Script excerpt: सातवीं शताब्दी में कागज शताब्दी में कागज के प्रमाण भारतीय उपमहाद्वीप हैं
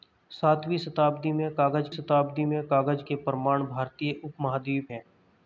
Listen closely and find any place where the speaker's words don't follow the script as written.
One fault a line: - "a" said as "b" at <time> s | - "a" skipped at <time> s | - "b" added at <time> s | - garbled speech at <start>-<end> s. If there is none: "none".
none